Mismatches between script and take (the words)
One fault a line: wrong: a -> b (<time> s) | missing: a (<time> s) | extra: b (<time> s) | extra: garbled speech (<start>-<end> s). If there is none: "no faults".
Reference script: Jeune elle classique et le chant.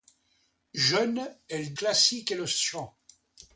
no faults